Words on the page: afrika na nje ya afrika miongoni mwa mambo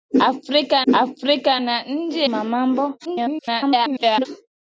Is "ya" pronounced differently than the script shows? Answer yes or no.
yes